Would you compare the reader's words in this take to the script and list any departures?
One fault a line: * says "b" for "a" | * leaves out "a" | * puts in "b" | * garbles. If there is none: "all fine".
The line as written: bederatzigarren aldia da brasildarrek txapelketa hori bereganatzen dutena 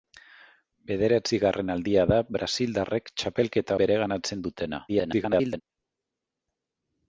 * leaves out "hori"
* garbles